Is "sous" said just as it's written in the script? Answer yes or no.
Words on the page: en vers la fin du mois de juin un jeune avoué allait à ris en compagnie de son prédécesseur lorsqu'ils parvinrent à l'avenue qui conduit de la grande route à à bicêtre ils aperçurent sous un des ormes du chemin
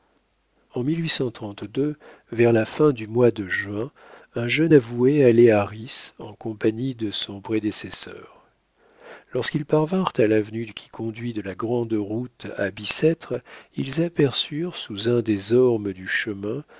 yes